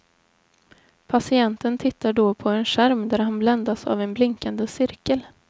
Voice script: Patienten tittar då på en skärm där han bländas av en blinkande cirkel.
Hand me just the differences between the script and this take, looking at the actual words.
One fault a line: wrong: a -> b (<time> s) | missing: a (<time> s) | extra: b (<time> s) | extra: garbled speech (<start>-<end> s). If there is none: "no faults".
no faults